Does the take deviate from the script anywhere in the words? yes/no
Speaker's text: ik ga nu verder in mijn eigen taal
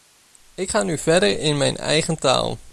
no